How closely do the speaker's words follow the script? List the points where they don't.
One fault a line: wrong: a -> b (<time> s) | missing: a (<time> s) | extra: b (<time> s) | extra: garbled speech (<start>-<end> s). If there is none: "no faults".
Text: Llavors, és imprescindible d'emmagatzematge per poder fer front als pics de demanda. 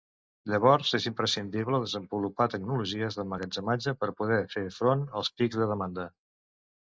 extra: desenvolupar tecnologies (1.8 s)